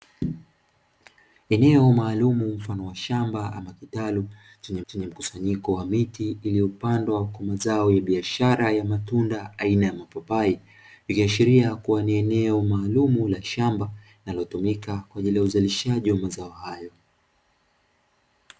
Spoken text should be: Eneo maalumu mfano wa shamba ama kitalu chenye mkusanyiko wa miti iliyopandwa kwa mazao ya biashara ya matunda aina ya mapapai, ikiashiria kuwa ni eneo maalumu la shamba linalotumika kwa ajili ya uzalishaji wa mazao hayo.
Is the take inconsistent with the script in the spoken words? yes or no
yes